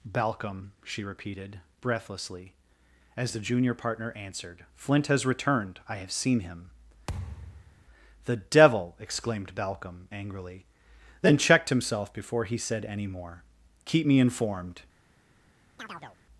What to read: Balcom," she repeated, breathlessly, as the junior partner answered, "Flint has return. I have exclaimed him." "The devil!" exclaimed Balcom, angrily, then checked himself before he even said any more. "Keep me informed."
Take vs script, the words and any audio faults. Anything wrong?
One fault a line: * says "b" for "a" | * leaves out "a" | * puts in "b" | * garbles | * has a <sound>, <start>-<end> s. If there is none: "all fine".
* says "returned" for "return"
* says "seen" for "exclaimed"
* has a thud, 7.1-7.9 s
* leaves out "even"
* has a chirp, 15.8-16.2 s